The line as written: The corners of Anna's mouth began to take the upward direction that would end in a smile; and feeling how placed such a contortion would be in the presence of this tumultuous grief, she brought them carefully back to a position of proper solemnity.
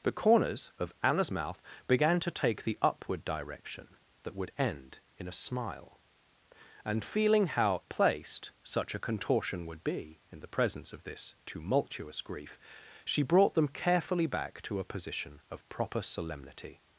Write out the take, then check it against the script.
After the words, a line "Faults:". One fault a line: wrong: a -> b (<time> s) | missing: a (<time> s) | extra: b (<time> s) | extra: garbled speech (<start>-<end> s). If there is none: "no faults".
The corners of Anna's mouth began to take the upward direction that would end in a smile; and feeling how placed such a contortion would be in the presence of this tumultuous grief, she brought them carefully back to a position of proper solemnity.
Faults:
no faults